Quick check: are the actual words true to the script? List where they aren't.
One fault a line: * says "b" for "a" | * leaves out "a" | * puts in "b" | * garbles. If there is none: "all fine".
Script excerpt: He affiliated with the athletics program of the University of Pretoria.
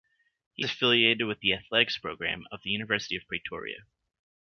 all fine